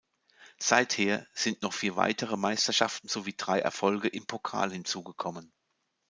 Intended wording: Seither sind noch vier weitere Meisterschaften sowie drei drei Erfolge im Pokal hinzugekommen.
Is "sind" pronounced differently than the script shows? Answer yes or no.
no